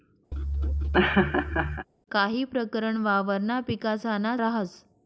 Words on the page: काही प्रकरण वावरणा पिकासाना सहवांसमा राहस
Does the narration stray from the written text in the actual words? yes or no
yes